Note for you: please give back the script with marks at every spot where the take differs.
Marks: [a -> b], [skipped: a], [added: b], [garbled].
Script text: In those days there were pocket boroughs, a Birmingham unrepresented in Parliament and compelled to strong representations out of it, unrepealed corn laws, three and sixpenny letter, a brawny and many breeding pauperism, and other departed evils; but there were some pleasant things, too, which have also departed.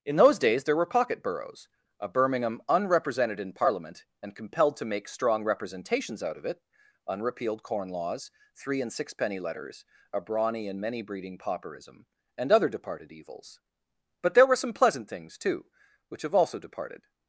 In those days there were pocket boroughs, a Birmingham unrepresented in Parliament and compelled to [added: make] strong representations out of it, unrepealed corn laws, three and sixpenny [letter, -> letters] a brawny and many breeding pauperism, and other departed evils; but there were some pleasant things, too, which have also departed.